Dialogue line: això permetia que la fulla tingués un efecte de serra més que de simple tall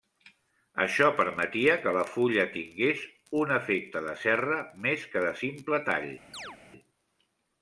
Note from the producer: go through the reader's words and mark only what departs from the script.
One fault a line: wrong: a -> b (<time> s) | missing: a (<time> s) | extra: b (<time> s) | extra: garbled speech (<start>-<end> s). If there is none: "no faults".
no faults